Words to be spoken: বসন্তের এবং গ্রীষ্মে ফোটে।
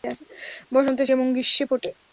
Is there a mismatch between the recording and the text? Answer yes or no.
no